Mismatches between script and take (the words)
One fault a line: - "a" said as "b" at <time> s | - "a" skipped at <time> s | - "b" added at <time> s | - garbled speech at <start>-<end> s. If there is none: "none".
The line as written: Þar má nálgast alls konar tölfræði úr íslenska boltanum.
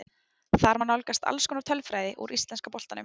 none